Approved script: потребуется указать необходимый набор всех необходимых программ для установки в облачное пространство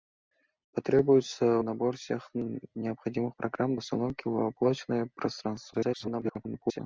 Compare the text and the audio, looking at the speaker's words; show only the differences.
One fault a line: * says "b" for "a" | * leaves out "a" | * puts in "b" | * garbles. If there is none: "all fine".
* leaves out "указать необходимый"
* leaves out "для"
* garbles